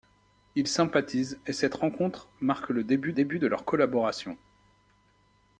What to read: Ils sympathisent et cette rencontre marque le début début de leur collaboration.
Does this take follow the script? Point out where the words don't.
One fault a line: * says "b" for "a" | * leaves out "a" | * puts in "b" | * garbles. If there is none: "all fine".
all fine